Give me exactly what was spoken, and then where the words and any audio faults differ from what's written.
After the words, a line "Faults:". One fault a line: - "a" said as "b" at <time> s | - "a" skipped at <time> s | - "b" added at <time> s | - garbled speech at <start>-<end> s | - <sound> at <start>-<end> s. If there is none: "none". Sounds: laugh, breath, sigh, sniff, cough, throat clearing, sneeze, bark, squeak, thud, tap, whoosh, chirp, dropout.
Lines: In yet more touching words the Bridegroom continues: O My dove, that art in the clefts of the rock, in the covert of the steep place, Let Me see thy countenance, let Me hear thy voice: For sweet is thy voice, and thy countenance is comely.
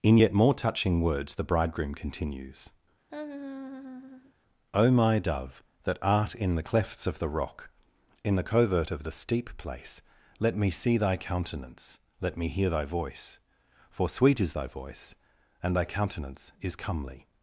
In yet more touching words the Bridegroom continues: O My dove, that art in the clefts of the rock, in the covert of the steep place, Let Me see thy countenance, let Me hear thy voice: For sweet is thy voice, and thy countenance is comely.
Faults:
- laugh at 3.1-4.3 s